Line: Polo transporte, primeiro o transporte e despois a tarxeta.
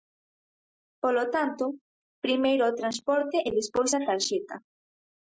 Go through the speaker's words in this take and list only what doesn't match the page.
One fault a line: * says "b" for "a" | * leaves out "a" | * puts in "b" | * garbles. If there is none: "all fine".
* says "tanto" for "transporte"